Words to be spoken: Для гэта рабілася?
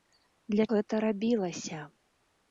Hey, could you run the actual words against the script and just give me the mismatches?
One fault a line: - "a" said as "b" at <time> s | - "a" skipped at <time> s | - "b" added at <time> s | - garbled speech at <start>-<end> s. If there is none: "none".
none